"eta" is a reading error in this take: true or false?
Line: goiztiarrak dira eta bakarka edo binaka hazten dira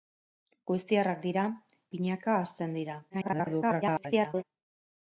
true